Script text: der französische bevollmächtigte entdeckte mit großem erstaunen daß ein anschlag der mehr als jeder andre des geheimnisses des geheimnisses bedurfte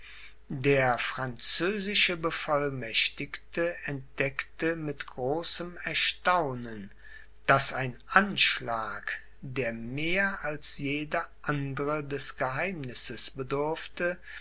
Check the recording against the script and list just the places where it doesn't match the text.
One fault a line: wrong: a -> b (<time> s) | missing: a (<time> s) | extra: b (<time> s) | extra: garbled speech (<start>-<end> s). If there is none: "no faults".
missing: des geheimnisses (13.3 s)